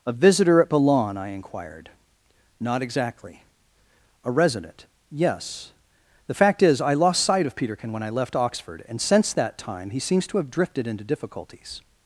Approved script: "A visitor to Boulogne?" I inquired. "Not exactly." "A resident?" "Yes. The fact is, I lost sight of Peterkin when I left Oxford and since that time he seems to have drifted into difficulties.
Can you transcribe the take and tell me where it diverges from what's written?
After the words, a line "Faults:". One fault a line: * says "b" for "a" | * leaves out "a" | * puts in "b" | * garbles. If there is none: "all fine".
"A visitor at Boulogne?" I inquired. "Not exactly." "A resident?" "Yes. The fact is, I lost sight of Peterkin when I left Oxford and since that time he seems to have drifted into difficulties.
Faults:
* says "at" for "to"